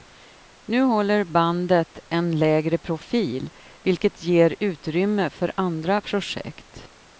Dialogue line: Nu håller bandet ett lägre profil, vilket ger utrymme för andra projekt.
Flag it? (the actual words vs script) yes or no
yes